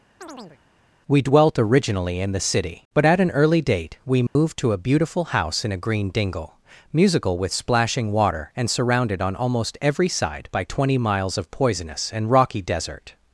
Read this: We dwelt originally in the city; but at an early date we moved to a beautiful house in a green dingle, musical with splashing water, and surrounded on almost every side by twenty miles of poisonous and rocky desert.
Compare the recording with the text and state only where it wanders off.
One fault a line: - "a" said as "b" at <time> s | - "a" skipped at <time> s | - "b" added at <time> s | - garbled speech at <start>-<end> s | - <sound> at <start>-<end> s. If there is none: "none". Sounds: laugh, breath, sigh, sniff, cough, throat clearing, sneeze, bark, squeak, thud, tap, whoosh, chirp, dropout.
- chirp at 0.2-0.6 s
- dropout at 4.3-4.4 s